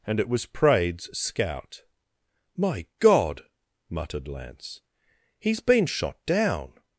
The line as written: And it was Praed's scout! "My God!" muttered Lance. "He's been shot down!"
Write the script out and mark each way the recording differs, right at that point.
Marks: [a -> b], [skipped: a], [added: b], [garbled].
And it was Praed's scout! "My God!" muttered Lance. "He's been shot down!"